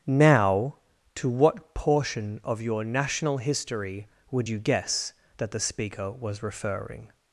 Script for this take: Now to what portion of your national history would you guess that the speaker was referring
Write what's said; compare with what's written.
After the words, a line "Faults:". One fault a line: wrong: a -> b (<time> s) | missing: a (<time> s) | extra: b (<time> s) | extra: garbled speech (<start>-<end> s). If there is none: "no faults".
Now to what portion of your national history would you guess that the speaker was referring
Faults:
no faults